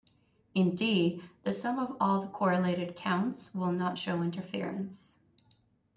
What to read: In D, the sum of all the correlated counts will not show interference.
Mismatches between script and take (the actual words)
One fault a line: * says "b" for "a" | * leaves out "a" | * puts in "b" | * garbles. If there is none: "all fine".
all fine